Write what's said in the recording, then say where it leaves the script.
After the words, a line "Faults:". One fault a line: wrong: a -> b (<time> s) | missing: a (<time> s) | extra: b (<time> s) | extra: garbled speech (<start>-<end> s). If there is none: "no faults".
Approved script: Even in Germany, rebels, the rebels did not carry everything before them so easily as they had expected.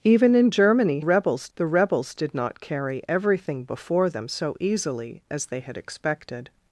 Even in Germany, rebels, the rebels did not carry everything before them so easily as they had expected.
Faults:
no faults